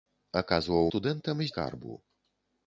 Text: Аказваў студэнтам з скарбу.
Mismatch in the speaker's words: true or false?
false